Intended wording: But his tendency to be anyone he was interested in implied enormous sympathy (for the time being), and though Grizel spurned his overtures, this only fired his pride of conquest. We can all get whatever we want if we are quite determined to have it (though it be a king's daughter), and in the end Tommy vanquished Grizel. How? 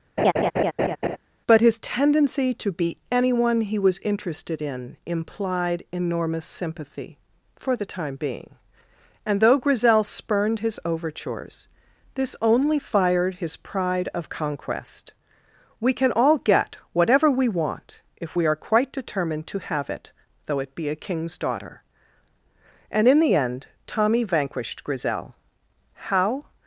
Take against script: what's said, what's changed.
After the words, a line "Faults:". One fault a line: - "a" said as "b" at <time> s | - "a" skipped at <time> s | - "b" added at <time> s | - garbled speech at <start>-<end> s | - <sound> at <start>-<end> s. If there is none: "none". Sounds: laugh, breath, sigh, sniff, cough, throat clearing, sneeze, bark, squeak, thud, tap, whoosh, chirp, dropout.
But his tendency to be anyone he was interested in implied enormous sympathy (for the time being), and though Grizel spurned his overtures, this only fired his pride of conquest. We can all get whatever we want if we are quite determined to have it (though it be a king's daughter), and in the end Tommy vanquished Grizel. How?
Faults:
- laugh at 0.2-1.2 s